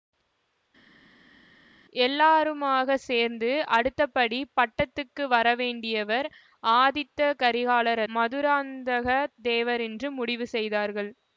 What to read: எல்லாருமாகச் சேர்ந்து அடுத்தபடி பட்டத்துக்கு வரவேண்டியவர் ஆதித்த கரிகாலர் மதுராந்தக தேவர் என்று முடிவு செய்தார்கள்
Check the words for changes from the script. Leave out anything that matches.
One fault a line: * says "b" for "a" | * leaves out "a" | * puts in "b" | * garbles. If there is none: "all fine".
all fine